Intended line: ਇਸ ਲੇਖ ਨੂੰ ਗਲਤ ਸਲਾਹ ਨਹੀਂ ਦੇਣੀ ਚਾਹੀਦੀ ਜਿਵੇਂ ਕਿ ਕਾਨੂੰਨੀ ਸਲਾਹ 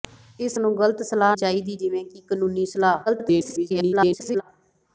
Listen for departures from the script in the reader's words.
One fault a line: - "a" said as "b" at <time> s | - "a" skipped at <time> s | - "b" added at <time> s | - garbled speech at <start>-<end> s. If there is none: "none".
- "ਲੇਖ" skipped at 0.6 s
- "ਨਹੀਂ ਦੇਣੀ" skipped at 1.4 s
- garbled speech at 3.1-4.4 s